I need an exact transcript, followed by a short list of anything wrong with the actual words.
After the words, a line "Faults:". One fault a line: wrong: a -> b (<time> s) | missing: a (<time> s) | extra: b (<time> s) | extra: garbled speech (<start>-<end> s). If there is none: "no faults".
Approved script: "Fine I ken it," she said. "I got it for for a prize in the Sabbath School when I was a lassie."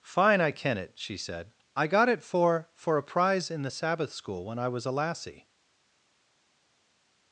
"Fine I ken it," she said. "I got it for for a prize in the Sabbath School when I was a lassie."
Faults:
no faults